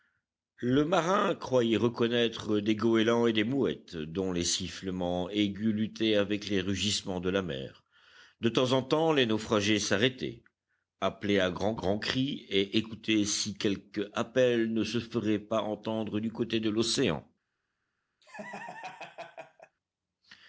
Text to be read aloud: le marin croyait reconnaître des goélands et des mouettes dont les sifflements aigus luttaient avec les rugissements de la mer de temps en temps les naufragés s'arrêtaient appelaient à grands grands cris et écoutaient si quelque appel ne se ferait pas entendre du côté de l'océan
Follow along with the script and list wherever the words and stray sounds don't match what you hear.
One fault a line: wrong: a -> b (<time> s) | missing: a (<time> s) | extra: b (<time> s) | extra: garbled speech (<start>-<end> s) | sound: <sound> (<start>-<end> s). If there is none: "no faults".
sound: laugh (18.2-19.8 s)